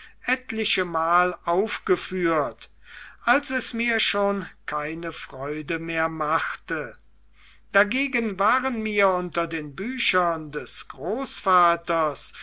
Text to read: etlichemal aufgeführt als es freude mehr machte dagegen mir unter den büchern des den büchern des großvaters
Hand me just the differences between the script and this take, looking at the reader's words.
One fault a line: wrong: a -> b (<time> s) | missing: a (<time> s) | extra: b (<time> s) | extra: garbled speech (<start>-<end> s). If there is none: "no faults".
extra: mir schon keine (3.8 s)
extra: waren (8.4 s)
missing: den büchern des (10.9 s)